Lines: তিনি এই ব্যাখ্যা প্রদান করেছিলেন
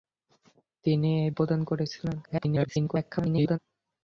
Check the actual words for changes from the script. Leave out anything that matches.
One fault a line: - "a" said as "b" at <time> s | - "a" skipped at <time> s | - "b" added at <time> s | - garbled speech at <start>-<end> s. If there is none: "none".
- "ব্যাখ্যা" skipped at 1.3 s
- garbled speech at 2.2-3.6 s